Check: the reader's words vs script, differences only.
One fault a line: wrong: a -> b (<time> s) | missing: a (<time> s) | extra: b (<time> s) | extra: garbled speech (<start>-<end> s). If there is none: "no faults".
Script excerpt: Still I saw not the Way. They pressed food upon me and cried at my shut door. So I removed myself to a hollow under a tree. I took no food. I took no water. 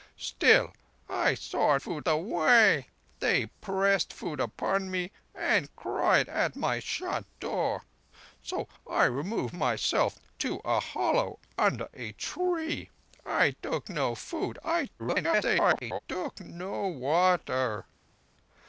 wrong: not -> food (1.8 s)
extra: garbled speech (15.0-16.0 s)